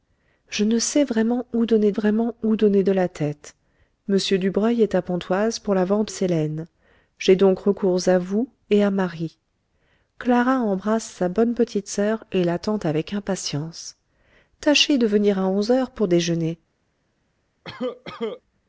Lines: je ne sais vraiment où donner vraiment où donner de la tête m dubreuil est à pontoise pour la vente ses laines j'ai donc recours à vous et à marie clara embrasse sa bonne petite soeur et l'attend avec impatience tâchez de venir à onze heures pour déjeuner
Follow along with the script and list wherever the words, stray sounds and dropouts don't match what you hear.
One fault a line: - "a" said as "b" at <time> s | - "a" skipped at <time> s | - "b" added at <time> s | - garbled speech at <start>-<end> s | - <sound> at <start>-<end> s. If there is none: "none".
- cough at 17.6-18.4 s